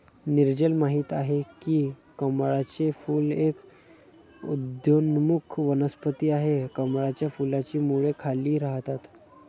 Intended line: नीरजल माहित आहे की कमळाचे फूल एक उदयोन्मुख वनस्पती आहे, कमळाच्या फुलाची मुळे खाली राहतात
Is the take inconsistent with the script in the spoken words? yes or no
no